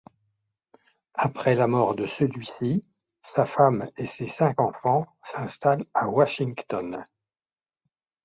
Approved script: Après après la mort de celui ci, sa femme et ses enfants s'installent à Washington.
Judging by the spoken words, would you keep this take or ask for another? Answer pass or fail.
fail